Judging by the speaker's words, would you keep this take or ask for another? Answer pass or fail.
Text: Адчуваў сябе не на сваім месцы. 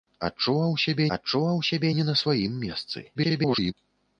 fail